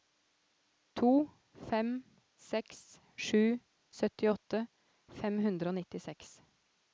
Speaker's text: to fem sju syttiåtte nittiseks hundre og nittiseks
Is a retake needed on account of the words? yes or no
yes